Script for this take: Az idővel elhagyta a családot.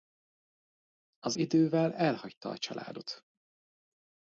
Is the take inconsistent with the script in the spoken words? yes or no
no